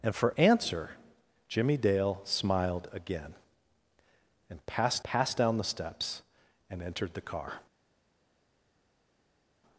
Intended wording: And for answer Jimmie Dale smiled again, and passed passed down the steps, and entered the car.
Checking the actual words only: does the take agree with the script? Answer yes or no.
yes